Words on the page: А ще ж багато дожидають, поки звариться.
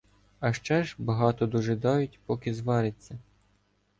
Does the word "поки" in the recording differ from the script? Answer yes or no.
no